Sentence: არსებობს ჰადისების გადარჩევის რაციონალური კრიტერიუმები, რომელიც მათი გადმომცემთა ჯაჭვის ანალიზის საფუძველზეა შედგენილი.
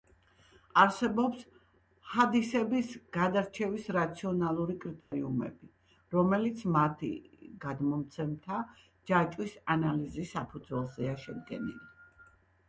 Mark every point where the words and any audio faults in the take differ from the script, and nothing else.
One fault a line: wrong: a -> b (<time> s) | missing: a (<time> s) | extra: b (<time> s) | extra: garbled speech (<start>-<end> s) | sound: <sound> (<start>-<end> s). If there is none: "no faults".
sound: dropout (5.0-5.1 s)